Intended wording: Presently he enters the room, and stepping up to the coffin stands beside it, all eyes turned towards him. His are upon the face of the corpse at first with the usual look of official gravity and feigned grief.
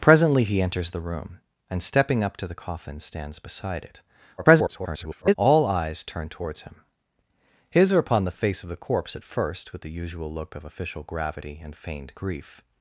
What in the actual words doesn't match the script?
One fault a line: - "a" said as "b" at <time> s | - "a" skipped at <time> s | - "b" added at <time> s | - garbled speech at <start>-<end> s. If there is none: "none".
- garbled speech at 4.4-5.3 s